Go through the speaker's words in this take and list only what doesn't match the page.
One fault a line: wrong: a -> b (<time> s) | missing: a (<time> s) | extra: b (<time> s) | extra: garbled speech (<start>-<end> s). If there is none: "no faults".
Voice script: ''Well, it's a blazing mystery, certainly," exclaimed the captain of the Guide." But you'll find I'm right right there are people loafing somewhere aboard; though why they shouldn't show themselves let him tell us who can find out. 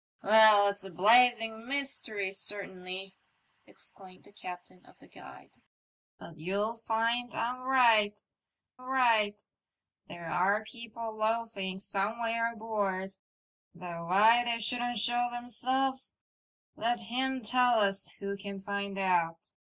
no faults